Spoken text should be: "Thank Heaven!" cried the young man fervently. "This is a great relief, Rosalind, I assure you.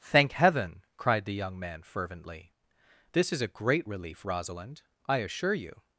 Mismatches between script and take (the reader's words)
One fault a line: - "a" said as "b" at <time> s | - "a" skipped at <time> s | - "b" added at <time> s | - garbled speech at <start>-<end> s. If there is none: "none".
none